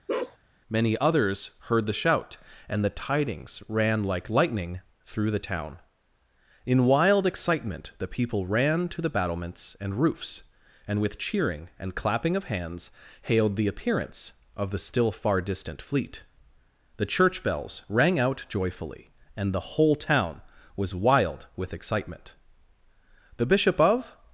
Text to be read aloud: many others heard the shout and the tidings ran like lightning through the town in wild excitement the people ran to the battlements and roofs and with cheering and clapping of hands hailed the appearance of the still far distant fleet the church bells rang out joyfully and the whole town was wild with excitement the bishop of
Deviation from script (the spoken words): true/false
false